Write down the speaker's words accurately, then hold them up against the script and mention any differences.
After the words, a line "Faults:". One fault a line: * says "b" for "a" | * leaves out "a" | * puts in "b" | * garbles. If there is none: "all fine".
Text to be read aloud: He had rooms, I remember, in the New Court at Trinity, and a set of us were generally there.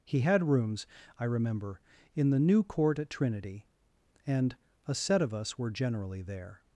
He had rooms, I remember, in the New Court at Trinity, and a set of us were generally there.
Faults:
all fine